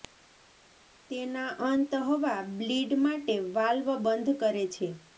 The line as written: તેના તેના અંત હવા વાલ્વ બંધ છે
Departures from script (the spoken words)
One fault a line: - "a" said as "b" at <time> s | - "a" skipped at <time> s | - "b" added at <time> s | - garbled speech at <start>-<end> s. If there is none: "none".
- "તેના" skipped at 1.5 s
- "બ્લીડ માટે" added at 2.5 s
- "કરે" added at 4.4 s